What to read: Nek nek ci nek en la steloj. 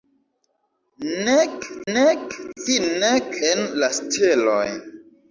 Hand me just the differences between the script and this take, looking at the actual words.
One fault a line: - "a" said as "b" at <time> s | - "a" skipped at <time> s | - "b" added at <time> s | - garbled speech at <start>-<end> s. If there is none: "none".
none